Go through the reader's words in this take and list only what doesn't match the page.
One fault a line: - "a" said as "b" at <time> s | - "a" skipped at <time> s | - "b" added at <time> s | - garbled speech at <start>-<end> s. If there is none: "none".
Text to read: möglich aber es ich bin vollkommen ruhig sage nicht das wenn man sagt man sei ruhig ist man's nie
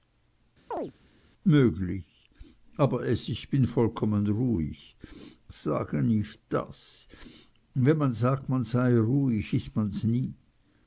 none